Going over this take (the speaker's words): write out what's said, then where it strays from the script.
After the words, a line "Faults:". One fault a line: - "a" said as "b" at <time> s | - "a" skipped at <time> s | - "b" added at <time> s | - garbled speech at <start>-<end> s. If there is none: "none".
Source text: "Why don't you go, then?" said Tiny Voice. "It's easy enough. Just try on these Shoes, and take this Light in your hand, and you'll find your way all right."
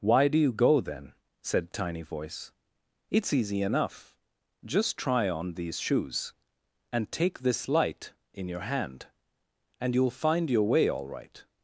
"Why do you go, then?" said Tiny Voice. "It's easy enough. Just try on these Shoes, and take this Light in your hand, and you'll find your way all right."
Faults:
- "don't" said as "do" at 0.3 s